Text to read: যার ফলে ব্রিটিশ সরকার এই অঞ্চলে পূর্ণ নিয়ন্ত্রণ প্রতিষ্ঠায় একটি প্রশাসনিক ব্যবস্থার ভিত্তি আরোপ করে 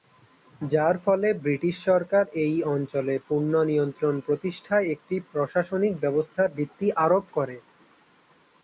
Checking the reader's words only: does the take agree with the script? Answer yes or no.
yes